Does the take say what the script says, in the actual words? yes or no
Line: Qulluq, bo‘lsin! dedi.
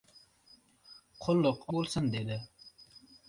yes